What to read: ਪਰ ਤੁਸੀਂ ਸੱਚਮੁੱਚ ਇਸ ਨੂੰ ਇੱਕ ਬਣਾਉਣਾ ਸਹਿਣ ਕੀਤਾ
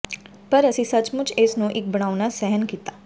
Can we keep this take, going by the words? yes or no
no